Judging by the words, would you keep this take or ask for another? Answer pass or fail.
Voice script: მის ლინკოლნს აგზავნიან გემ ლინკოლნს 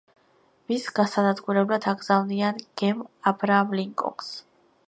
fail